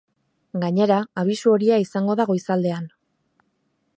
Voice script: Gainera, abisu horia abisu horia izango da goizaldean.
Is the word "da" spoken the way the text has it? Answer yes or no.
yes